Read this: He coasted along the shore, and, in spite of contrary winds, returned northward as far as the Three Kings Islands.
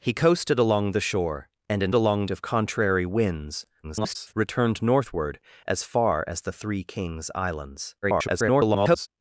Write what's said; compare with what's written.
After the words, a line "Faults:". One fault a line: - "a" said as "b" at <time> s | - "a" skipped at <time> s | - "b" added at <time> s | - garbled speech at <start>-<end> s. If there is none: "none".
He coasted along the shore, and, in along of contrary winds, [garbled] returned northward as far as the Three Kings Islands. [garbled]
Faults:
- "spite" said as "along" at 1.9 s
- garbled speech at 3.8-4.3 s
- garbled speech at 8.0-9.1 s